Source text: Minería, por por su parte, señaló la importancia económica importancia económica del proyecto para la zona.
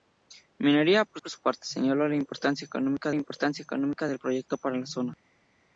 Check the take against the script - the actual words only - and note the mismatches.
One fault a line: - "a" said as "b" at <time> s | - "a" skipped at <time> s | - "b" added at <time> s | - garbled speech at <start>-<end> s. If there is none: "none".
none